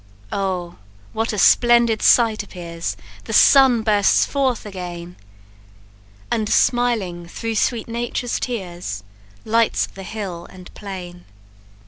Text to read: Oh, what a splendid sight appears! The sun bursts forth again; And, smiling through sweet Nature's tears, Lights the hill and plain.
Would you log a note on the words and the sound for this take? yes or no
no